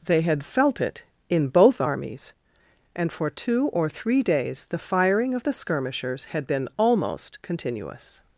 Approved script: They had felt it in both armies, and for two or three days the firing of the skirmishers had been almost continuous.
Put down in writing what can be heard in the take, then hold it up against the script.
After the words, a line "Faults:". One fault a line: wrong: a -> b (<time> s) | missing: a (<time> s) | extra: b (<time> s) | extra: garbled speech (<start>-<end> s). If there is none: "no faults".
They had felt it in both armies, and for two or three days the firing of the skirmishers had been almost continuous.
Faults:
no faults